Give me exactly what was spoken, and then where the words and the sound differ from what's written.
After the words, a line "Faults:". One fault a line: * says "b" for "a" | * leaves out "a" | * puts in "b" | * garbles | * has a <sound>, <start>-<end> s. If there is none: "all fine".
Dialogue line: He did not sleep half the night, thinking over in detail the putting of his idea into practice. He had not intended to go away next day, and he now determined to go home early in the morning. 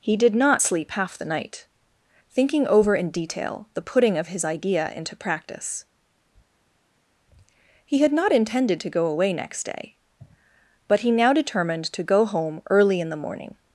He did not sleep half the night, thinking over in detail the putting of his idea into practice. He had not intended to go away next day, but he now determined to go home early in the morning.
Faults:
* says "but" for "and"